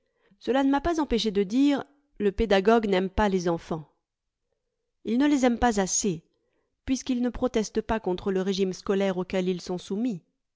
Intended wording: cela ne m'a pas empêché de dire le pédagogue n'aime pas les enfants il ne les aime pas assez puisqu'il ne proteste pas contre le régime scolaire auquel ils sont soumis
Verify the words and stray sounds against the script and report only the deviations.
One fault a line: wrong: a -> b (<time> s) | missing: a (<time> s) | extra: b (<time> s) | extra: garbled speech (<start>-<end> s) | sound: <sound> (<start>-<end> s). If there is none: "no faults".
no faults